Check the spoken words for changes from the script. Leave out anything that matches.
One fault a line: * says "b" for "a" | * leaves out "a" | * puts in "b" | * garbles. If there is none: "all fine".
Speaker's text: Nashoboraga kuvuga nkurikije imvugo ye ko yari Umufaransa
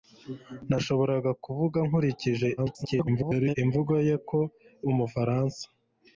* garbles
* leaves out "yari"